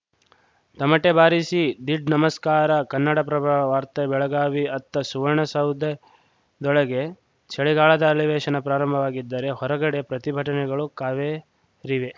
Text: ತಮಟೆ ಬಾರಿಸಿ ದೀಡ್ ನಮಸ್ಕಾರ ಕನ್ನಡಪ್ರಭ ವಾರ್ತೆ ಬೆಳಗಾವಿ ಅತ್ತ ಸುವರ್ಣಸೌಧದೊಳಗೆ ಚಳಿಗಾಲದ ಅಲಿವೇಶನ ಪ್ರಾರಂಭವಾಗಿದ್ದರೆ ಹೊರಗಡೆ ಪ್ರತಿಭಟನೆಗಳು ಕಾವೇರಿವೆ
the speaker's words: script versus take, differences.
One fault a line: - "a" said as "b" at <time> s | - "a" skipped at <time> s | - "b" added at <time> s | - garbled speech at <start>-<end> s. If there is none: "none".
none